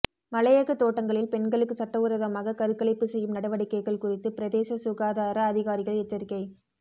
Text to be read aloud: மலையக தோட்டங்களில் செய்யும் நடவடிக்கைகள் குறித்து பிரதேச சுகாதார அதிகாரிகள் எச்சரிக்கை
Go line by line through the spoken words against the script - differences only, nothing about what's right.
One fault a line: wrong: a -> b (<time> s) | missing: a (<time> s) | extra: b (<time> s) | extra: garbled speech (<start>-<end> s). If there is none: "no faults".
extra: பெண்களுக்கு சட்டவிரோதமாக கருக்கலைப்பு (1.3 s)